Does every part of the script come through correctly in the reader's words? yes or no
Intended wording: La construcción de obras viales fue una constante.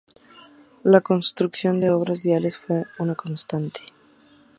yes